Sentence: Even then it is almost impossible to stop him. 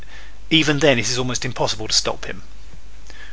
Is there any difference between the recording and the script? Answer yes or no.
no